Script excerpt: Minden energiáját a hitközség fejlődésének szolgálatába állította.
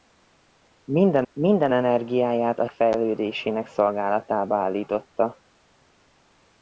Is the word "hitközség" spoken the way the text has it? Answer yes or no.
no